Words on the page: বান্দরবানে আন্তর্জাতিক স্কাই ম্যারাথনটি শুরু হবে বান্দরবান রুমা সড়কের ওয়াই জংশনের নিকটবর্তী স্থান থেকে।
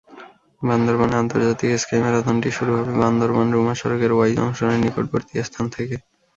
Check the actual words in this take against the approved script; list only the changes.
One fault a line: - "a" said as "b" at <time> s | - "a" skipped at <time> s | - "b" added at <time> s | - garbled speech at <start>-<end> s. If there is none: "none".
none